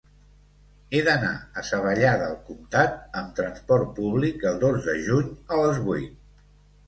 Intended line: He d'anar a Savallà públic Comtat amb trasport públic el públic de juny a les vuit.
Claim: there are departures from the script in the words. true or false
true